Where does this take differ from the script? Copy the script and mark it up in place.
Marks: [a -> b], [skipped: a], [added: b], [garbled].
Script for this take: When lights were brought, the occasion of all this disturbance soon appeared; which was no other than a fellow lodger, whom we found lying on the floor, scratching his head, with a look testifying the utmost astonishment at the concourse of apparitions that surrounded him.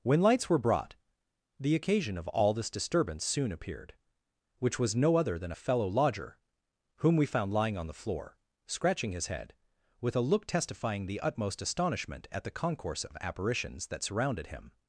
When lights were brought, the occasion of all this disturbance soon appeared; which was no other than a fellow lodger, whom we found lying on the floor, scratching his head, with a look testifying the utmost astonishment at the concourse of apparitions that surrounded him.